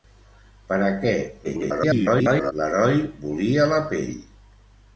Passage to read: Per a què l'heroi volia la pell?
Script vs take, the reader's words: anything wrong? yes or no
yes